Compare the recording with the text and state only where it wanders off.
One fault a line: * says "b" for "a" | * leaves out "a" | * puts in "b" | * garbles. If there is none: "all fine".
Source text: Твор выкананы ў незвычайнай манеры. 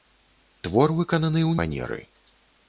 * leaves out "незвычайнай"